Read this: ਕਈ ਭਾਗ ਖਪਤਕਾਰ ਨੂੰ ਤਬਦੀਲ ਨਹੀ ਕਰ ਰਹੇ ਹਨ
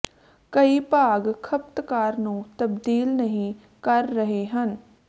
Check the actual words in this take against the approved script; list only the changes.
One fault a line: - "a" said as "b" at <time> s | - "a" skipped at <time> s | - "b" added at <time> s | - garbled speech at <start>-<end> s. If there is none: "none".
none